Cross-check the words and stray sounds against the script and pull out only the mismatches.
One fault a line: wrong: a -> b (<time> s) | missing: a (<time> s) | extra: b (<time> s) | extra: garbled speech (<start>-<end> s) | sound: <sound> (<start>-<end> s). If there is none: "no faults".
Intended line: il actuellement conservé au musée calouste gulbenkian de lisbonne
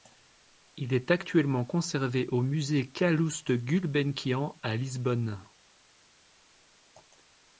extra: est (0.9 s)
wrong: de -> à (4.6 s)